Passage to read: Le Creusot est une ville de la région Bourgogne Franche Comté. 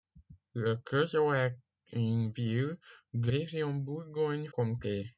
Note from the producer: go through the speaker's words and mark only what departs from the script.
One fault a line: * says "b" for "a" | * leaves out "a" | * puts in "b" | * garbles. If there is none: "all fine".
* leaves out "la"
* leaves out "Franche"